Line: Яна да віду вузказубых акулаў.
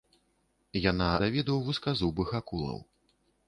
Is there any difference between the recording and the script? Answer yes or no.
no